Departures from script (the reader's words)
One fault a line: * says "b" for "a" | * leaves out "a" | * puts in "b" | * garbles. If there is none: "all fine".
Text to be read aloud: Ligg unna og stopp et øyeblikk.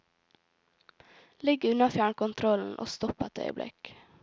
* puts in "fjernkontrollen"